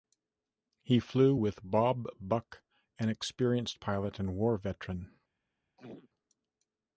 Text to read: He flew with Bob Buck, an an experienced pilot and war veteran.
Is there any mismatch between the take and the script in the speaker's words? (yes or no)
yes